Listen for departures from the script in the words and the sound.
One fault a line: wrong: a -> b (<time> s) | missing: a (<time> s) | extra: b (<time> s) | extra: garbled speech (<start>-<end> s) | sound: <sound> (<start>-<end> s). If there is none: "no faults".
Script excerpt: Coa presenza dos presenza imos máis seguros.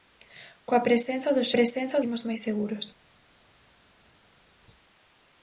no faults